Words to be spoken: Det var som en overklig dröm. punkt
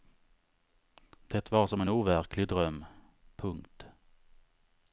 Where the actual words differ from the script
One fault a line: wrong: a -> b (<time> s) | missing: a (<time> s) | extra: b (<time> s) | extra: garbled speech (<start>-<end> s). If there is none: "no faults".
no faults